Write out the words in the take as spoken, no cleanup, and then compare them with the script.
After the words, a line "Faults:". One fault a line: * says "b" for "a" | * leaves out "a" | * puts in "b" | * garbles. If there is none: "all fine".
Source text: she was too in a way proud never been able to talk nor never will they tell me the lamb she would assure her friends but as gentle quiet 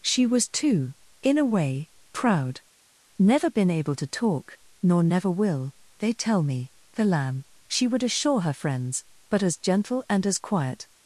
she was too in a way proud never been able to talk nor never will they tell me the lamb she would assure her friends but as gentle and as quiet
Faults:
* puts in "and as"